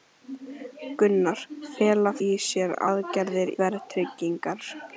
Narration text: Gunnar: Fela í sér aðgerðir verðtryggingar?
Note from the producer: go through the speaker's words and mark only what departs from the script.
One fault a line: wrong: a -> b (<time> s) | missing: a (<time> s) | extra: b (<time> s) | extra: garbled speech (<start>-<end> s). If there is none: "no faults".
no faults